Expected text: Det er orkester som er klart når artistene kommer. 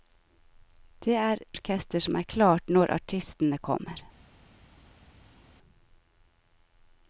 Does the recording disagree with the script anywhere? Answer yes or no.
no